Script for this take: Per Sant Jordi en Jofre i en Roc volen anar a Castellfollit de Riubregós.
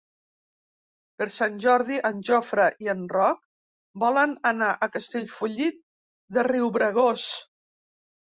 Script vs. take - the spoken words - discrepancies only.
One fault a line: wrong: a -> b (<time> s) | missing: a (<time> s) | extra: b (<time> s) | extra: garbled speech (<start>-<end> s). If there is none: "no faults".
no faults